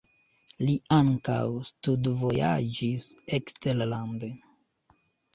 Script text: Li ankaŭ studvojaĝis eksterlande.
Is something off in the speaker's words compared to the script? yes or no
no